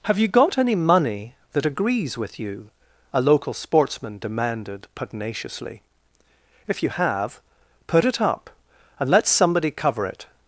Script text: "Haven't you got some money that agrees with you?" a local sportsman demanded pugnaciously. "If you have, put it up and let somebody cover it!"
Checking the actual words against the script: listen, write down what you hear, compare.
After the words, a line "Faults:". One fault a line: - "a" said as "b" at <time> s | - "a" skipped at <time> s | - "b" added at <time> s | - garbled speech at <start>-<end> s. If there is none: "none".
"Have you got any money that agrees with you?" a local sportsman demanded pugnaciously. "If you have, put it up and let somebody cover it!"
Faults:
- "Haven't" said as "Have" at 0.1 s
- "some" said as "any" at 0.6 s